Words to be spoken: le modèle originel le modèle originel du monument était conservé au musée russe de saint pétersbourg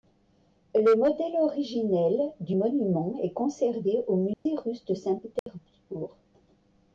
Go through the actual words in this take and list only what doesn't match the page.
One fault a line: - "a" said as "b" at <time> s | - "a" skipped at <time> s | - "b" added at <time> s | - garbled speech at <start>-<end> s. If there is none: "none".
- "le modèle originel" skipped at 2.3 s
- "était" said as "est" at 3.2 s